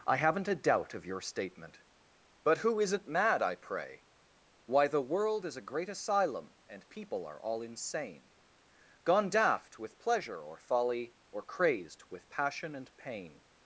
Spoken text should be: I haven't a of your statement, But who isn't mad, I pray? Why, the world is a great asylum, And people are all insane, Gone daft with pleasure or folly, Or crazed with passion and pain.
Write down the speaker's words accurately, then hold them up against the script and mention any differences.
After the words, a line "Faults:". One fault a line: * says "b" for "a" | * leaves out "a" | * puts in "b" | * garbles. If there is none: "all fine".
I haven't a doubt of your statement, But who isn't mad, I pray? Why, the world is a great asylum, And people are all insane, Gone daft with pleasure or folly, Or crazed with passion and pain.
Faults:
* puts in "doubt"